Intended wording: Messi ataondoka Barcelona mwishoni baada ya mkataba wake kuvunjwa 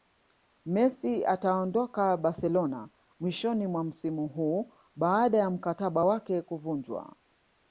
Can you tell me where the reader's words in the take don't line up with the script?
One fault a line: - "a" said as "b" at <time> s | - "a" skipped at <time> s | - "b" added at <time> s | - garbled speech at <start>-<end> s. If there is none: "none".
- "mwa msimu huu" added at 3.7 s